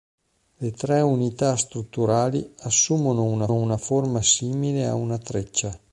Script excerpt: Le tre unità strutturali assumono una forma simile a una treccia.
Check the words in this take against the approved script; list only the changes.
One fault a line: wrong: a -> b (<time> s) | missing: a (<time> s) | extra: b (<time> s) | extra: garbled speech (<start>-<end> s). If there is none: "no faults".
extra: una (3.5 s)